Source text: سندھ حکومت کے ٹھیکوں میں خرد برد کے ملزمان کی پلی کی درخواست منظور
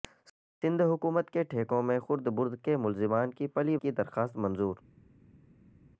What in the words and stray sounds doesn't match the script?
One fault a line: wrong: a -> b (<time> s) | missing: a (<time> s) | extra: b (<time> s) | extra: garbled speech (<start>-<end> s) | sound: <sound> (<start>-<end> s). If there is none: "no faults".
no faults